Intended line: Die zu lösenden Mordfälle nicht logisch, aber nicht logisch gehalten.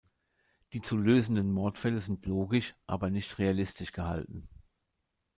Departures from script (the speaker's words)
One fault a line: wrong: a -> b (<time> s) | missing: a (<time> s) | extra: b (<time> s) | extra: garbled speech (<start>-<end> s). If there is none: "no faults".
wrong: nicht -> sind (2.0 s)
wrong: logisch -> realistisch (3.4 s)